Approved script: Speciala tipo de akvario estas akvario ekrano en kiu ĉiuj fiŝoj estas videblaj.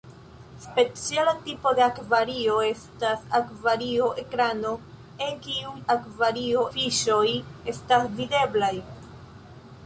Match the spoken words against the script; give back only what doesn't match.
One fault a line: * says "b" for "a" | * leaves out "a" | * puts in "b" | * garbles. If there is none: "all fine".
* says "akvario" for "ĉiuj"